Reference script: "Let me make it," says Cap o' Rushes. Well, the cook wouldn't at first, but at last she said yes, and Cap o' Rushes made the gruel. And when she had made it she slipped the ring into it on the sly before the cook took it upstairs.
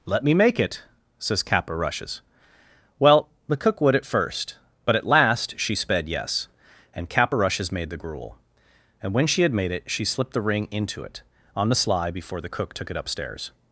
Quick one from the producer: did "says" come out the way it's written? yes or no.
yes